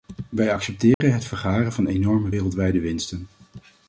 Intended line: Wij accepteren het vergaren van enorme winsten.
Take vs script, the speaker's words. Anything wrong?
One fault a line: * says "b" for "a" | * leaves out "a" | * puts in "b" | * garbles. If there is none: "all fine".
* puts in "wereldwijde"